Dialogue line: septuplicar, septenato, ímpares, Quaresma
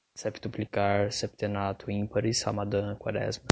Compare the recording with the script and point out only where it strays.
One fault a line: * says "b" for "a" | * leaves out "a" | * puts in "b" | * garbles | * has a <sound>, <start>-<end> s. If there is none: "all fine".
* puts in "Ramadã"